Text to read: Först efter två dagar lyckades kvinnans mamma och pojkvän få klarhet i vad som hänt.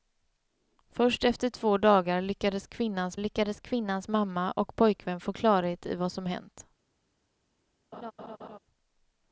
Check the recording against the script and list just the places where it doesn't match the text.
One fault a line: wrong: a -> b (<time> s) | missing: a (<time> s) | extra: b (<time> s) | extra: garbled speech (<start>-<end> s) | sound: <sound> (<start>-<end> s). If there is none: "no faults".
extra: lyckades kvinnans (3.2 s)
sound: laugh (7.9-8.6 s)